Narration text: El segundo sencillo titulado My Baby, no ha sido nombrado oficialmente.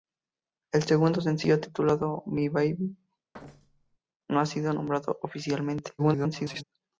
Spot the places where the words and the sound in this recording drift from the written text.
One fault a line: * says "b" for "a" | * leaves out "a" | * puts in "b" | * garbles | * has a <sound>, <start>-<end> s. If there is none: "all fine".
* has a thud, 3.3-4.0 s
* garbles